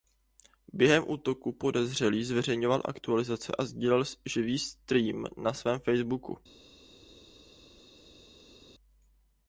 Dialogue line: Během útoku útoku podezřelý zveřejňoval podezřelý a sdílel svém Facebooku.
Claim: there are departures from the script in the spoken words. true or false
true